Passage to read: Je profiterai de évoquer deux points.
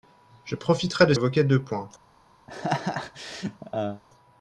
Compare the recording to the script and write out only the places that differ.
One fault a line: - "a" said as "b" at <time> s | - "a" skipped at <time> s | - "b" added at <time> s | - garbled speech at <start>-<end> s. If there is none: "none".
none